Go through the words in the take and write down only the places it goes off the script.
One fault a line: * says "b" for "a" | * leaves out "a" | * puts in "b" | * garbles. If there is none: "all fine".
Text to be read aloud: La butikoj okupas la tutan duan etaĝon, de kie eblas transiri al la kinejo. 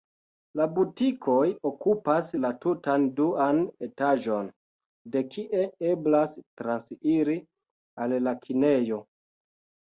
all fine